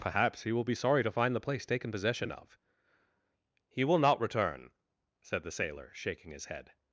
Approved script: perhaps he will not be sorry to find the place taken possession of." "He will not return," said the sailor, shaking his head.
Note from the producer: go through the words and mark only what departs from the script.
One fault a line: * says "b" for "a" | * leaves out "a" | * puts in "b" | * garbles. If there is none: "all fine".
* leaves out "not"